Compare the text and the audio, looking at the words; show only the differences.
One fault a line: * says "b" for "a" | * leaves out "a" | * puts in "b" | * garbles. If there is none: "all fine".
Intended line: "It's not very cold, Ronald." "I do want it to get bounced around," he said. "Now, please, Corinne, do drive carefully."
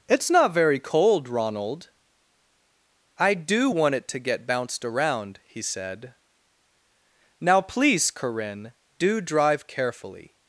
all fine